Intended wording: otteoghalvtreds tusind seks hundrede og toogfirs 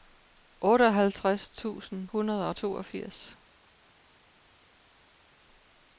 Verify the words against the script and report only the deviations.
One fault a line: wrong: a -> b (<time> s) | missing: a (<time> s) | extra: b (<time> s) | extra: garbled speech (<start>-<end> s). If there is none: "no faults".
missing: seks (2.1 s)